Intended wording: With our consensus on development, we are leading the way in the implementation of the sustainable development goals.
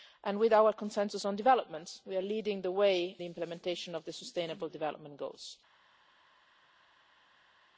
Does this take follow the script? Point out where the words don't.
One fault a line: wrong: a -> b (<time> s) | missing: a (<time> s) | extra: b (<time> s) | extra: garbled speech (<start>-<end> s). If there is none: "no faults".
missing: in (3.2 s)